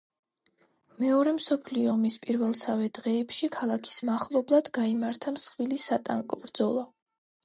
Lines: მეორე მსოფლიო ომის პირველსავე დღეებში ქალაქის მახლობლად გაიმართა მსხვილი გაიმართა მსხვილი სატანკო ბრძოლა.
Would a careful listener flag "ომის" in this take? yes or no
no